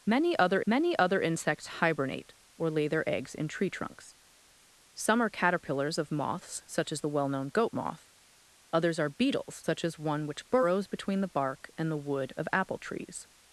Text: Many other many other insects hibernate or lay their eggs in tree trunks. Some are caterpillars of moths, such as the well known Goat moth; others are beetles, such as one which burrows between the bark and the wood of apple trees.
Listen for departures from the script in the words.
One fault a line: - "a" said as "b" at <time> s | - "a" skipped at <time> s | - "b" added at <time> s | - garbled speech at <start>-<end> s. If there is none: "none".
none